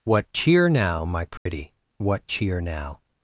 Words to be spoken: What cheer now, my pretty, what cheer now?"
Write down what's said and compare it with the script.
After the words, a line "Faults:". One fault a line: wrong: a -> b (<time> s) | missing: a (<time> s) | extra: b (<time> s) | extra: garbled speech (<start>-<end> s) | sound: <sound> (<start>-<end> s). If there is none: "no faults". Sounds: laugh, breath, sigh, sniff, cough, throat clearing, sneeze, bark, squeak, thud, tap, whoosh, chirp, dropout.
What cheer now, my pretty, what cheer now?"
Faults:
sound: dropout (1.4-1.5 s)